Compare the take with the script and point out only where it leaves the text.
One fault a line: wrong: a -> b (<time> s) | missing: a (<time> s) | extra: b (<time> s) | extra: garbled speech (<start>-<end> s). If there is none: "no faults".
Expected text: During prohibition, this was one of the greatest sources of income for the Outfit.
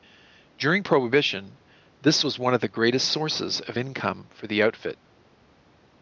no faults